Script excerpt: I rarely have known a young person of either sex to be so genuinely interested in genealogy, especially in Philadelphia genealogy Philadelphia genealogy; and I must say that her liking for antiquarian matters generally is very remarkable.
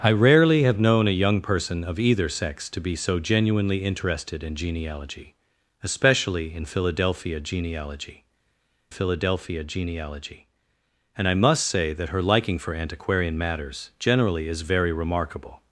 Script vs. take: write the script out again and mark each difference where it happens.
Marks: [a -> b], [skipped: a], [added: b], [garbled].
I rarely have known a young person of either sex to be so genuinely interested in genealogy, especially in Philadelphia genealogy Philadelphia genealogy; and I must say that her liking for antiquarian matters generally is very remarkable.